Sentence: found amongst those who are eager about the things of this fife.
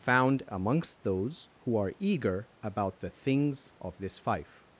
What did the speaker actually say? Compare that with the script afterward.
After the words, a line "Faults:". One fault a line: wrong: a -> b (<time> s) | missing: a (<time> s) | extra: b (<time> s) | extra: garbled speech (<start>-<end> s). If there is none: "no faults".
found amongst those who are eager about the things of this fife.
Faults:
no faults